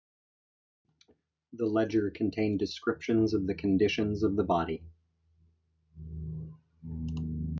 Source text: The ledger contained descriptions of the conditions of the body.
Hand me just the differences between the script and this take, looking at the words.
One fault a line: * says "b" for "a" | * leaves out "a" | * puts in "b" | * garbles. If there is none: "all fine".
all fine